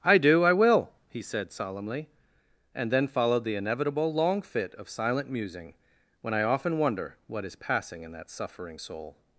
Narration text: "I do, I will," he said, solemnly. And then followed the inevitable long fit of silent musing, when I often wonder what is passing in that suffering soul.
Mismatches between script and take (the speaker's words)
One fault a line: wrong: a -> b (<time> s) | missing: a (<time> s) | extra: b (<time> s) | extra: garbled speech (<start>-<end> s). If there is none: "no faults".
no faults